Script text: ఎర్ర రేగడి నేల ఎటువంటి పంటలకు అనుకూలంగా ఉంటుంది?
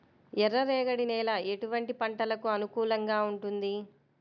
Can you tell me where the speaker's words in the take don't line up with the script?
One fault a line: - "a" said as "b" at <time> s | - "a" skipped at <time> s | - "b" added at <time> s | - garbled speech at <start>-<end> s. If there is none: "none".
none